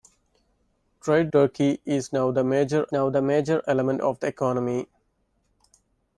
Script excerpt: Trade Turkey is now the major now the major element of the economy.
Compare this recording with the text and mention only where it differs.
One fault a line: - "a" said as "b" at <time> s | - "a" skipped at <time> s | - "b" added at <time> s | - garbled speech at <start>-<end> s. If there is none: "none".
none